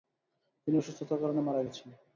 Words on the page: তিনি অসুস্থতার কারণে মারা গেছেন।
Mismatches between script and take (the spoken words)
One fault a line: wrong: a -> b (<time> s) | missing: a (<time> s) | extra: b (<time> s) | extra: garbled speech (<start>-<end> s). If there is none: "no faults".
no faults